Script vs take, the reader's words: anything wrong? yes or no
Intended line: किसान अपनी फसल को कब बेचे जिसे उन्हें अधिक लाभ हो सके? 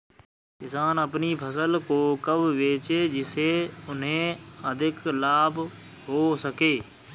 no